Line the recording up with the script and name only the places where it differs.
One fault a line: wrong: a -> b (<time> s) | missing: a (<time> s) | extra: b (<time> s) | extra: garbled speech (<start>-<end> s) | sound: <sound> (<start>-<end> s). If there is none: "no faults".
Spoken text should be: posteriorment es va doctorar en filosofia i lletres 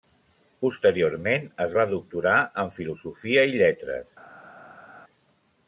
no faults